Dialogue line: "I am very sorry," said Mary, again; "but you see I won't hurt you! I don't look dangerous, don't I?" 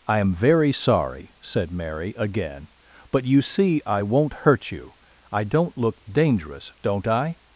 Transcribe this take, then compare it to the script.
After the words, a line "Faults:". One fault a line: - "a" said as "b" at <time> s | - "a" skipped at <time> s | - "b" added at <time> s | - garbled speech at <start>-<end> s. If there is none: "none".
"I am very sorry," said Mary, again; "but you see I won't hurt you! I don't look dangerous, don't I?"
Faults:
none